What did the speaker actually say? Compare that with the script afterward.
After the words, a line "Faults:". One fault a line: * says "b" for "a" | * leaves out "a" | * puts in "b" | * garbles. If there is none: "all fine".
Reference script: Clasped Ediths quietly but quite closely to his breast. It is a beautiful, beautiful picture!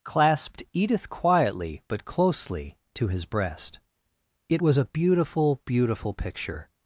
Clasped Edith quietly but closely to his breast. It was a beautiful, beautiful picture!
Faults:
* says "Edith" for "Ediths"
* leaves out "quite"
* says "was" for "is"